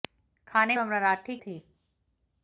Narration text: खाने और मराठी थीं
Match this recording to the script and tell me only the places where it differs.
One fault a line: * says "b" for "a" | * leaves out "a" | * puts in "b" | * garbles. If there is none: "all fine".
all fine